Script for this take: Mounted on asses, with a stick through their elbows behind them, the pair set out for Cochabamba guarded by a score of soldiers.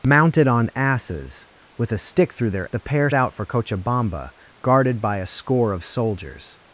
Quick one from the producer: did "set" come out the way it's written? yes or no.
no